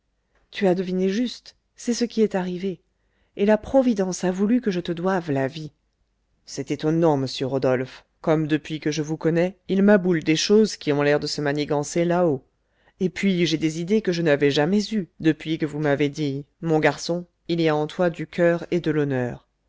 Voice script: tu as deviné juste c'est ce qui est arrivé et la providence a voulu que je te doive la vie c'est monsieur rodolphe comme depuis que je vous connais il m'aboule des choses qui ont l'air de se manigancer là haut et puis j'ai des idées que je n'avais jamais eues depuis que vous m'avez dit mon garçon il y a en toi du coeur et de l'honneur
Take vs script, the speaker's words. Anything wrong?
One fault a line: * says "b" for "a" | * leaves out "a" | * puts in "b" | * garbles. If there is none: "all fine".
* puts in "étonnant"